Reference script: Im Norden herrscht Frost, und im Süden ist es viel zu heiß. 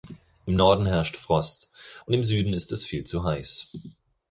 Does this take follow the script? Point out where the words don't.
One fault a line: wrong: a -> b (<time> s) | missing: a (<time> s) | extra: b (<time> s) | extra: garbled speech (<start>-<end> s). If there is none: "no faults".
no faults